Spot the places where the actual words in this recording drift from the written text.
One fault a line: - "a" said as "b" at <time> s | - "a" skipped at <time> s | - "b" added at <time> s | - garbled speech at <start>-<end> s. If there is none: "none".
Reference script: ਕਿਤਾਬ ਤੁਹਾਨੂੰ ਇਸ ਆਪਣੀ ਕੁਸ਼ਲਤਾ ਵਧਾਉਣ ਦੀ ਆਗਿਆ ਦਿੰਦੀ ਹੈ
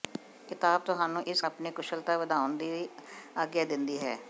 none